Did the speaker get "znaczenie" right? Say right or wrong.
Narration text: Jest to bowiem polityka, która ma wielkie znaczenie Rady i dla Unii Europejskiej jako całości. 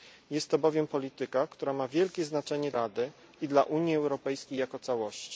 right